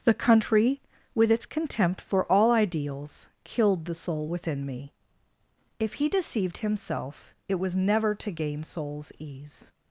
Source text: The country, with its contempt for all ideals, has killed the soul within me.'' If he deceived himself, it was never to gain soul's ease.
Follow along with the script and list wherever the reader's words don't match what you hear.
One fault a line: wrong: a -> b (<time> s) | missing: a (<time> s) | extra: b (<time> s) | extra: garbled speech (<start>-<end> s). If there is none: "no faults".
missing: has (3.3 s)